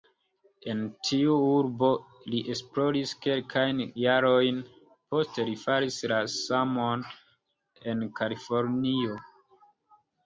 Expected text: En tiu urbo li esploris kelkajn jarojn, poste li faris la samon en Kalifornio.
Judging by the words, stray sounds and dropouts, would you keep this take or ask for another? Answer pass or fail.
pass